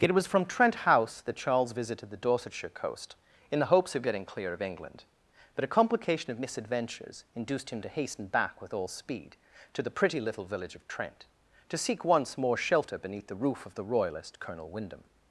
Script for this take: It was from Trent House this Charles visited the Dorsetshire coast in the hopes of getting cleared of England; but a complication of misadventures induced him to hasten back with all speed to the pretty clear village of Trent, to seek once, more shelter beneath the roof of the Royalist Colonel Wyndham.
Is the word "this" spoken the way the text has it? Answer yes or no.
no